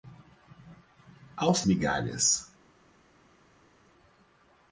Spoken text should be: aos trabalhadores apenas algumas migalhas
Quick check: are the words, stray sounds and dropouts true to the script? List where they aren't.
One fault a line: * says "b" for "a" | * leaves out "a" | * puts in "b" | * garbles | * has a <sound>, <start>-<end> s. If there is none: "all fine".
* leaves out "trabalhadores apenas algumas"